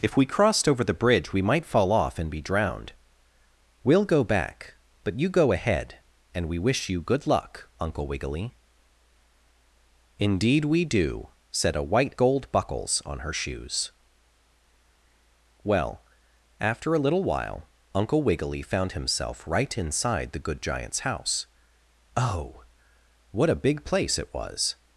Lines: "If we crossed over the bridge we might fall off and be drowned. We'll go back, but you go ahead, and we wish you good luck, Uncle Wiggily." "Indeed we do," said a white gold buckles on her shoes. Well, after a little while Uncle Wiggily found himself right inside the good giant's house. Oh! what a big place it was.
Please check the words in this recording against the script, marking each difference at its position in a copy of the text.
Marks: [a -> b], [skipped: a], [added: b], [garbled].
"If we crossed over the bridge we might fall off and be drowned. We'll go back, but you go ahead, and we wish you good luck, Uncle Wiggily." "Indeed we do," said a white gold buckles on her shoes. Well, after a little while Uncle Wiggily found himself right inside the good giant's house. Oh! what a big place it was.